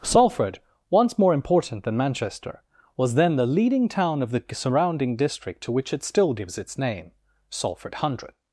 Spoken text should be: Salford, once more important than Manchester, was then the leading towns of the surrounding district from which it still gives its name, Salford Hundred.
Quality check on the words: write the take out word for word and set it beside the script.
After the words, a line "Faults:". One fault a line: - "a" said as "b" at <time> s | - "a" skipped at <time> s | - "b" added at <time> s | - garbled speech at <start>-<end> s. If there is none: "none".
Salford, once more important than Manchester, was then the leading town of the surrounding district to which it still gives its name, Salford Hundred.
Faults:
- "towns" said as "town" at 3.9 s
- "from" said as "to" at 5.6 s